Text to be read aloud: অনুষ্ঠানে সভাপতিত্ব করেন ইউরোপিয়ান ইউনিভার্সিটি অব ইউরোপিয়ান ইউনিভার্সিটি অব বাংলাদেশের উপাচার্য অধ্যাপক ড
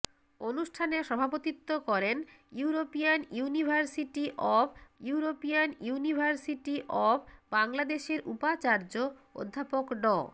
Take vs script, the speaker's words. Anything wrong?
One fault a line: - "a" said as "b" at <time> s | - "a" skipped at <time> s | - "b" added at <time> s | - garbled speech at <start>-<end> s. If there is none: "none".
none